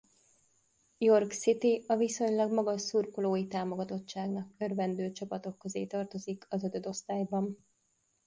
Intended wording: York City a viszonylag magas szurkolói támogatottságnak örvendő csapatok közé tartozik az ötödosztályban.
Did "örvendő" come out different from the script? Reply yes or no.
no